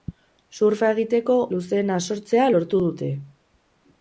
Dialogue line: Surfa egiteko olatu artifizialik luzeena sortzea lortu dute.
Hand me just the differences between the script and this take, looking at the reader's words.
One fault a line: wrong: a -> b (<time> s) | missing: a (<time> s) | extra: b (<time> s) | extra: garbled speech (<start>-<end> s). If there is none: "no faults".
missing: olatu artifizialik (1.4 s)